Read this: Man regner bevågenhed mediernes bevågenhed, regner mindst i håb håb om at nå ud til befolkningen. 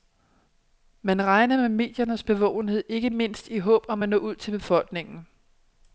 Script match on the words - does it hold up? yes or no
no